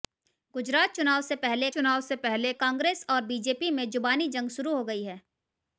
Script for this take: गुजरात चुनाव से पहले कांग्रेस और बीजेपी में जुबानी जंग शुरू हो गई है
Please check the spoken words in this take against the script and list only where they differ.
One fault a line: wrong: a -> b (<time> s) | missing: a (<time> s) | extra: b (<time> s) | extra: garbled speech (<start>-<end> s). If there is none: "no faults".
extra: चुनाव से पहले (1.7 s)